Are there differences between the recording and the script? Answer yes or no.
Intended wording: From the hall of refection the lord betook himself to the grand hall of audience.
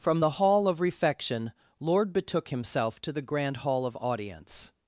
yes